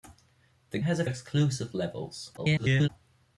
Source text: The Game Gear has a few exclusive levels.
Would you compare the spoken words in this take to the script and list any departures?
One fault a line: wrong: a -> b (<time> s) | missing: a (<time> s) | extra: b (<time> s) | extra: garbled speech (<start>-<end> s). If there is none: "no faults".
missing: Game Gear (0.8 s)
missing: few (1.0 s)
extra: garbled speech (2.4-2.9 s)